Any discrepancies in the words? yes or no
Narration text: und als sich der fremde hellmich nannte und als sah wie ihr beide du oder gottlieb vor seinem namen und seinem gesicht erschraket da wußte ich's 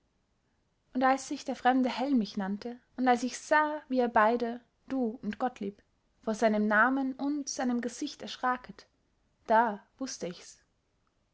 yes